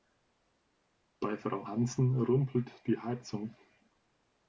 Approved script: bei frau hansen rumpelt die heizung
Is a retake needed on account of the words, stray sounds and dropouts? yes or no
no